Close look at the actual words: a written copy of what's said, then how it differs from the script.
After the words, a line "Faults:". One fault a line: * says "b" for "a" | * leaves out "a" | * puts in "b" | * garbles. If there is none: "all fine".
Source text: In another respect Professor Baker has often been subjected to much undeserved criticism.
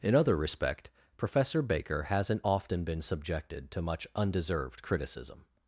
In other respect Professor Baker hasn't often been subjected to much undeserved criticism.
Faults:
* says "other" for "another"
* says "hasn't" for "has"